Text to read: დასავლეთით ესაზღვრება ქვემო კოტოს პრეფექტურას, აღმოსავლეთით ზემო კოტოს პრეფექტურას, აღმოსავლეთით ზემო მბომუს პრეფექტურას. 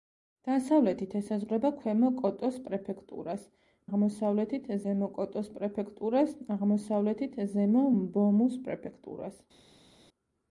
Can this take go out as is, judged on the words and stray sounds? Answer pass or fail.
pass